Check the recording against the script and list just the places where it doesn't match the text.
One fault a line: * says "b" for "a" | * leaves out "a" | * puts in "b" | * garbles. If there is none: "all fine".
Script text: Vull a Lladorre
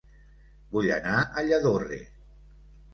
* puts in "anar"